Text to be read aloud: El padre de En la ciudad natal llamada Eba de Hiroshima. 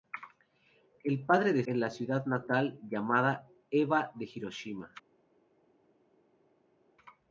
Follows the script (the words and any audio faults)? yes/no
yes